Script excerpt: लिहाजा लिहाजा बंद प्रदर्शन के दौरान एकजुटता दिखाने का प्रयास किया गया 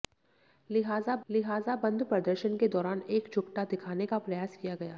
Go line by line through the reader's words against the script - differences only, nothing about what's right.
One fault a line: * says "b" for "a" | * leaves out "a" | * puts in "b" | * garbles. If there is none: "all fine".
all fine